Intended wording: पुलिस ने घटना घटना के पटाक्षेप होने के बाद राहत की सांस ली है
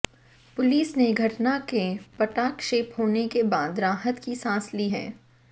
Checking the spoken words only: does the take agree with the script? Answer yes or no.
no